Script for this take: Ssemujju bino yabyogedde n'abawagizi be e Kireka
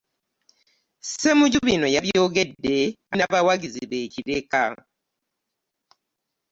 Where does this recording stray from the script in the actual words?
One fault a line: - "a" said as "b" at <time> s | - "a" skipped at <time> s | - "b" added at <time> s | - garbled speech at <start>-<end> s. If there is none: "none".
none